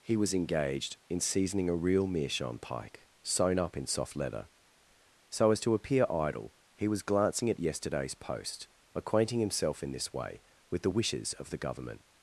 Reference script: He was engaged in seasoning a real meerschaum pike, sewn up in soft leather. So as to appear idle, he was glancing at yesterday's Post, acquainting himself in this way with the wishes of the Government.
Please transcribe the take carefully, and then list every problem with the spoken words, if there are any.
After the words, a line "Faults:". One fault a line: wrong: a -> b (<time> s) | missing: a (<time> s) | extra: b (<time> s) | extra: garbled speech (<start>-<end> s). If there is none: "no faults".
He was engaged in seasoning a real meerschaum pike, sewn up in soft leather. So as to appear idle, he was glancing at yesterday's Post, acquainting himself in this way with the wishes of the Government.
Faults:
no faults